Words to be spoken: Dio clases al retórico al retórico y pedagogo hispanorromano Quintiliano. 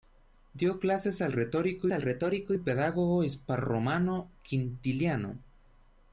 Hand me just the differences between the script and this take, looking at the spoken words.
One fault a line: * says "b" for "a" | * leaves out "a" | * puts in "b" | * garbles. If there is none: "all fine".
all fine